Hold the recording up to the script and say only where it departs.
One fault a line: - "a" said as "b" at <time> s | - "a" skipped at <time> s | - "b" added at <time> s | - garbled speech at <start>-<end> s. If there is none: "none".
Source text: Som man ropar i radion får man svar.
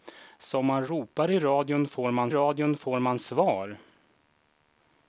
- "radion får man" added at 2.3 s